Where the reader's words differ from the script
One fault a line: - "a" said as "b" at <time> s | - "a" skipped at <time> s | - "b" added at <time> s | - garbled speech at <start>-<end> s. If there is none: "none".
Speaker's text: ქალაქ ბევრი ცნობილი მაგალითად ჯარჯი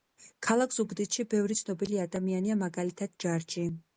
- "ზუგდიდში" added at 0.8 s
- "ადამიანია" added at 2.0 s